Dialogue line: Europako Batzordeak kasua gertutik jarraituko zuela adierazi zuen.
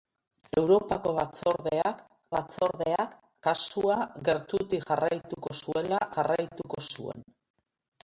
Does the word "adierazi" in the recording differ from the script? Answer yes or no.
yes